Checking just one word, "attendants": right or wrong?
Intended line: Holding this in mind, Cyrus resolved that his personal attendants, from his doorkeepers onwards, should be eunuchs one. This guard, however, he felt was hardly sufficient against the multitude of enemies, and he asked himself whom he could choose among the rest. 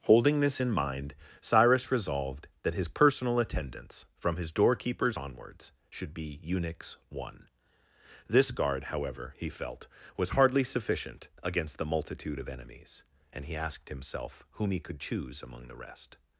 right